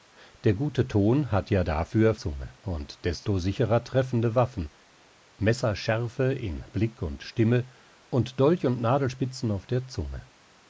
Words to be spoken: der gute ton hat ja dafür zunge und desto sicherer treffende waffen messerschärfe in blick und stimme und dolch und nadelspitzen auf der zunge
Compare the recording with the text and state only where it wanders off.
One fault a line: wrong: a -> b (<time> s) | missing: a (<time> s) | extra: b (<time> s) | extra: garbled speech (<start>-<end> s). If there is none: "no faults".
no faults